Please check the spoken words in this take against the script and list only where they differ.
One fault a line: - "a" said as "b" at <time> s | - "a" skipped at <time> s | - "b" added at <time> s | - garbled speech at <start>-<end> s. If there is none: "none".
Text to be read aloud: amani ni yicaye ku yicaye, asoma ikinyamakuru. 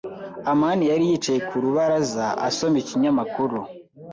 - "ni" said as "yari" at 0.9 s
- "yicaye" said as "rubaraza" at 1.6 s